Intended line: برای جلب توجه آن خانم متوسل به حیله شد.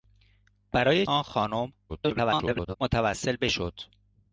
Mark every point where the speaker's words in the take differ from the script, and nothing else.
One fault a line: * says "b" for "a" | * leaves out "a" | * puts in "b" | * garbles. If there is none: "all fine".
* leaves out "جلب توجه"
* garbles
* leaves out "حیله"